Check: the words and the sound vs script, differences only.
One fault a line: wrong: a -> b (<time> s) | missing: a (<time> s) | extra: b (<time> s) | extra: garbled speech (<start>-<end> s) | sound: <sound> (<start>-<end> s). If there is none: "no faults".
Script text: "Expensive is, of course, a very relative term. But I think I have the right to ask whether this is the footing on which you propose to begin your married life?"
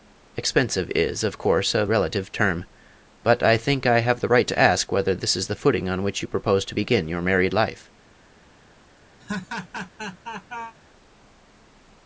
missing: very (1.9 s)
sound: laugh (9.2-10.8 s)